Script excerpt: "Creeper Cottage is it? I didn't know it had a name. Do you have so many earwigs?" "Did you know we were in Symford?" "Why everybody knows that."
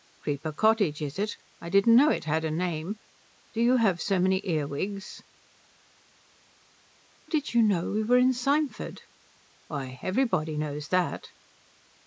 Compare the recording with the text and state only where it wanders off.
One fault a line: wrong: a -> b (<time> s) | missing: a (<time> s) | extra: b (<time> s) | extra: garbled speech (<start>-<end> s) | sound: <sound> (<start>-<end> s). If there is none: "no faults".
no faults